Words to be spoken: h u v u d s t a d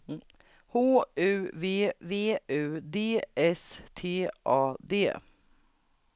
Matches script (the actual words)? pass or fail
fail